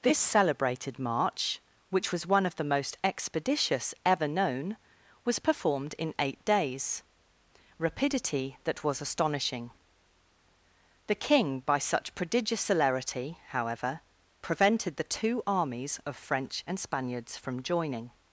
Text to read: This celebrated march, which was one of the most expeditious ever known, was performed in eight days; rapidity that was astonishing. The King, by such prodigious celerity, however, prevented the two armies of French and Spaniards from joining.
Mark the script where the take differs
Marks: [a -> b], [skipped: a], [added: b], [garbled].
This celebrated march, which was one of the most expeditious ever known, was performed in eight days; rapidity that was astonishing. The King, by such prodigious celerity, however, prevented the two armies of French and Spaniards from joining.